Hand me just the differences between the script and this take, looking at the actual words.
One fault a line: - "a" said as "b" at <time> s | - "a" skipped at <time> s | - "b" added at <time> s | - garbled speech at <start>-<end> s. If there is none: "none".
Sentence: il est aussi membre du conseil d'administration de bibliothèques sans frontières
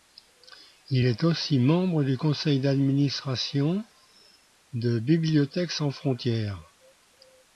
none